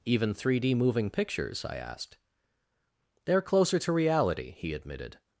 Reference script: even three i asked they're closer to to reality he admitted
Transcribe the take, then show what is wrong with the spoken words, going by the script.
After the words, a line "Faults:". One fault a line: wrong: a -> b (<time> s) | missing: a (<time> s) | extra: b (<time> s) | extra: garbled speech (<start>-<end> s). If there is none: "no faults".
even three d moving pictures i asked they're closer to reality he admitted
Faults:
extra: d moving pictures (0.6 s)
missing: to (3.9 s)